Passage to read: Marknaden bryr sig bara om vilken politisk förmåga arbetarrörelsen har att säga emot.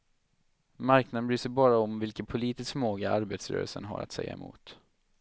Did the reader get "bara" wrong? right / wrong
right